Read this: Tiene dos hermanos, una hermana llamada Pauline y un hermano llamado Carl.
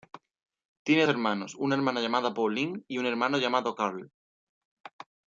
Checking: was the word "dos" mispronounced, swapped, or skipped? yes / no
yes